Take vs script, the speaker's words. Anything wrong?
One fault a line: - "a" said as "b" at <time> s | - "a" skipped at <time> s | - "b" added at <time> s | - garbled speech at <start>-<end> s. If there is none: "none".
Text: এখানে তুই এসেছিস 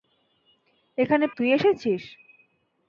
none